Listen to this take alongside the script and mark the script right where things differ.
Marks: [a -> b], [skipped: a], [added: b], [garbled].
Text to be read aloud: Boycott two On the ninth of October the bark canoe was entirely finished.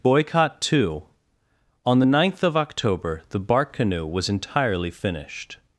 Boycott two On the ninth of October the bark canoe was entirely finished.